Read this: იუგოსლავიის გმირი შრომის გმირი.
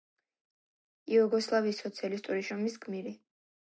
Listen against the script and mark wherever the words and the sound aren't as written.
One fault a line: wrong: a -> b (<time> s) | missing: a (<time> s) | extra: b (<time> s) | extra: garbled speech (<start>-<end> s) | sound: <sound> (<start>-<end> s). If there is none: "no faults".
wrong: გმირი -> სოციალისტური (1.8 s)